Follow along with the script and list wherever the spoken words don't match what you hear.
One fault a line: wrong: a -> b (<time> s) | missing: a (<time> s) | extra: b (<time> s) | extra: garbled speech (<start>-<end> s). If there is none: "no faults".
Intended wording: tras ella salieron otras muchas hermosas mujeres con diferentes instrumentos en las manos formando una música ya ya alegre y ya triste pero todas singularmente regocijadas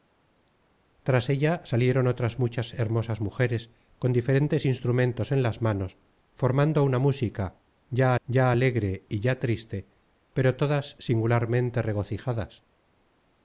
no faults